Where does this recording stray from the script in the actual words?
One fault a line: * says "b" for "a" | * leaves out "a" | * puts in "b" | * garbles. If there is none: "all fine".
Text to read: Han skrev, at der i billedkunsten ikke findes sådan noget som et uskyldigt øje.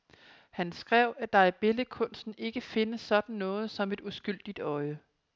all fine